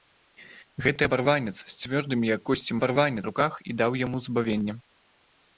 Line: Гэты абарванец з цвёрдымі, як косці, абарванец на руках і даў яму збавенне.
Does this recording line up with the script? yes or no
yes